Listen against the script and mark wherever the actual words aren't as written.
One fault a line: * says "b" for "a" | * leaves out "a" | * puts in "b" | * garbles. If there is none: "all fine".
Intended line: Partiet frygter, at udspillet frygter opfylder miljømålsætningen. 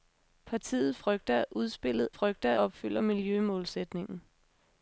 all fine